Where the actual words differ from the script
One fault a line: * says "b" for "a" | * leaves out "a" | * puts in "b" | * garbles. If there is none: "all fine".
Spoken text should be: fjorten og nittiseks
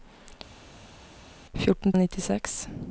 all fine